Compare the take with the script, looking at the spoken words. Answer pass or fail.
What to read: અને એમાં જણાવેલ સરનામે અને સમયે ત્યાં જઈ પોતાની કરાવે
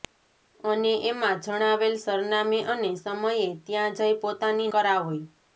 pass